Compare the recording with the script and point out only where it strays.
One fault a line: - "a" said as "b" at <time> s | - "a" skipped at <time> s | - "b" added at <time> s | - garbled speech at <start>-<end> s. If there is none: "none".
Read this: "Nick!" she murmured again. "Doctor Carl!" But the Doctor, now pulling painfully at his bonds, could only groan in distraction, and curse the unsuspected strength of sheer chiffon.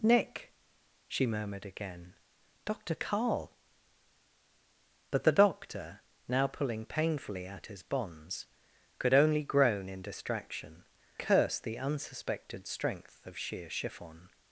- "and" skipped at 10.9 s